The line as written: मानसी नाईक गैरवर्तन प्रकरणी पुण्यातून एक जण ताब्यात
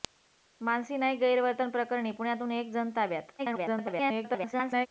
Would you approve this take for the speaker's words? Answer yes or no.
no